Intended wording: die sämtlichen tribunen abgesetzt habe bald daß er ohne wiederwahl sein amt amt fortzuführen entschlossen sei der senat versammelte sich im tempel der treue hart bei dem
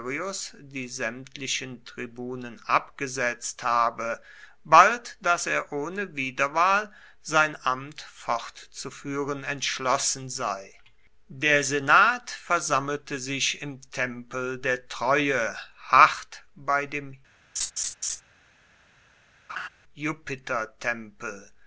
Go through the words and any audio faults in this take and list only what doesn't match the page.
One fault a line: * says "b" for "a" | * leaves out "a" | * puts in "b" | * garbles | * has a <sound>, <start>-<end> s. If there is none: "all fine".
* leaves out "amt"
* has a laugh, 17.6-18.2 s
* has a laugh, 19.5-19.7 s